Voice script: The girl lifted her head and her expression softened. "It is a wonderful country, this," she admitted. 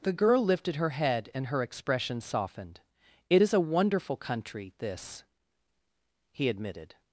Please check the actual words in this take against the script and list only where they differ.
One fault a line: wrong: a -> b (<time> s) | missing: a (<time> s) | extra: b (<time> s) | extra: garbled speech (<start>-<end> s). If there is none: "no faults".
wrong: she -> he (6.3 s)